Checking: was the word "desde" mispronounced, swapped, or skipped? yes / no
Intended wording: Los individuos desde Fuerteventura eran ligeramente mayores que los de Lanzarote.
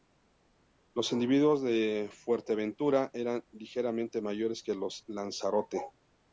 yes